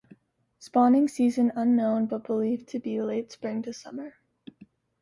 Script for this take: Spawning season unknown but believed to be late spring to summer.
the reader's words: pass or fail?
pass